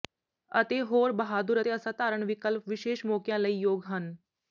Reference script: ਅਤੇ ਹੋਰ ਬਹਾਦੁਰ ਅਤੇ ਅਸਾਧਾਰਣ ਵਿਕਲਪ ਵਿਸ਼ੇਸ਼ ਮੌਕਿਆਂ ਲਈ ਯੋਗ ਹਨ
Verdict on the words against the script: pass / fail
pass